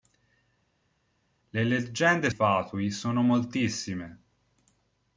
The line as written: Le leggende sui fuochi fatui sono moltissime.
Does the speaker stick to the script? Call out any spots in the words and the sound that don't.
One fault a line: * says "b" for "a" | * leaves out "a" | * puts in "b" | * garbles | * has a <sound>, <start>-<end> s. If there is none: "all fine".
* leaves out "sui fuochi"